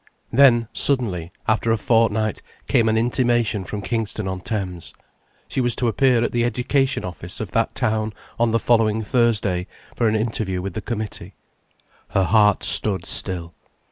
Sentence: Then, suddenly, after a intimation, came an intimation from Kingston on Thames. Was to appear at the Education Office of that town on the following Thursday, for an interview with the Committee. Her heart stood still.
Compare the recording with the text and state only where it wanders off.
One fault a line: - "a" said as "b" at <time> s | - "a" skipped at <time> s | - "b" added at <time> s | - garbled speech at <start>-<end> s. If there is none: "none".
- "intimation" said as "fortnight" at 1.8 s
- "She" added at 5.5 s